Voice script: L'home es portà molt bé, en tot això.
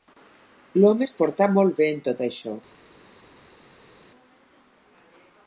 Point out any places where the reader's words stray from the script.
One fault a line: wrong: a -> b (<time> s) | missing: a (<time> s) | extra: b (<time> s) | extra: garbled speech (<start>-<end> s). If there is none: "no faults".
no faults